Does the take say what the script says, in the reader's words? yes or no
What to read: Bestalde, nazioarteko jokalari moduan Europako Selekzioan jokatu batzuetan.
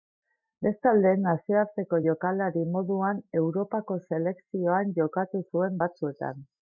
no